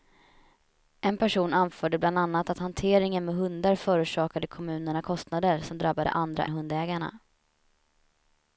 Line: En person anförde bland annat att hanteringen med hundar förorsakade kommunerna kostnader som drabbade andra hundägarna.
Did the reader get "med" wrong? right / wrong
right